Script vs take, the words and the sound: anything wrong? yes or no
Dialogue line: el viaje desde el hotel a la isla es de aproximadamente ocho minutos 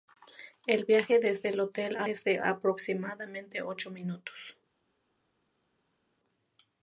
yes